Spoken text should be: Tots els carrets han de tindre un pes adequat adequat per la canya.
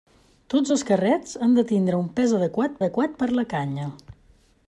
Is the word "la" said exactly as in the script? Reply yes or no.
yes